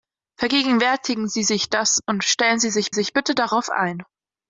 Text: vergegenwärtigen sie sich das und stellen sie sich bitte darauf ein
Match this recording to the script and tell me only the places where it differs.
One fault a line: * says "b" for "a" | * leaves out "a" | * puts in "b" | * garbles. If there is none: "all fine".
* puts in "sich"